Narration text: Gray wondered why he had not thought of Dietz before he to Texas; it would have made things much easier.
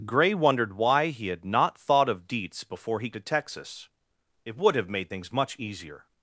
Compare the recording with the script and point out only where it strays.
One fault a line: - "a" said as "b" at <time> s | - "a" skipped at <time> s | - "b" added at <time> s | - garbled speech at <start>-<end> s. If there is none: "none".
none